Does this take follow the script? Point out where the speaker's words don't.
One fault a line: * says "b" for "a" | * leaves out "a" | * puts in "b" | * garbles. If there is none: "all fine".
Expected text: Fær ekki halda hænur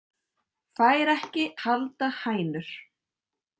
all fine